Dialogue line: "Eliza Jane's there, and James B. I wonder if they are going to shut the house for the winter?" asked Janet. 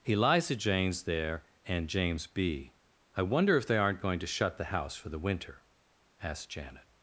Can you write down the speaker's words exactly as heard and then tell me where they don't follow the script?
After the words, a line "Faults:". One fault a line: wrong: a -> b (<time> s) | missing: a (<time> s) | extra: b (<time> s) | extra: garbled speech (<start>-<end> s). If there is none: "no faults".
"Eliza Jane's there, and James B. I wonder if they aren't going to shut the house for the winter?" asked Janet.
Faults:
wrong: are -> aren't (3.8 s)